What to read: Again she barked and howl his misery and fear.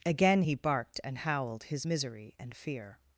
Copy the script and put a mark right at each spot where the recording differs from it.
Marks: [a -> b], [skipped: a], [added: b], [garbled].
Again [she -> he] barked and [howl -> howled] his misery and fear.